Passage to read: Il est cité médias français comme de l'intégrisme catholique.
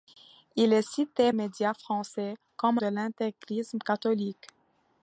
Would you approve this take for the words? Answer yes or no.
yes